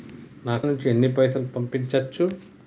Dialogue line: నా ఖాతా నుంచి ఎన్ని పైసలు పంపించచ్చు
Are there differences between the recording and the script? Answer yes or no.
yes